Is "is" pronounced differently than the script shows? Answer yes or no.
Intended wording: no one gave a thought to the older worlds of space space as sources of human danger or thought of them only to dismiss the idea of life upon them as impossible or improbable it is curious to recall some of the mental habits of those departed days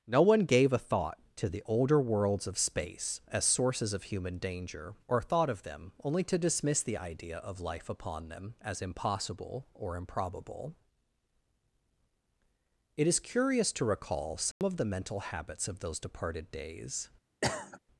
no